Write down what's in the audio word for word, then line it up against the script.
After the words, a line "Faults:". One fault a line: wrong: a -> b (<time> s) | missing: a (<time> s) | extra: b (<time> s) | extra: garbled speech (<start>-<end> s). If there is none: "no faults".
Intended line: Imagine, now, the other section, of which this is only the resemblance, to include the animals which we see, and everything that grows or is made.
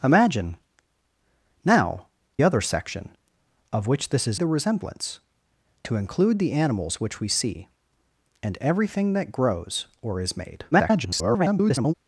Imagine, now, other section, of which this is the resemblance, to include the animals which we see, and everything that grows or is made. [garbled]
Faults:
missing: the (2.1 s)
missing: only (4.4 s)
extra: garbled speech (10.7-11.9 s)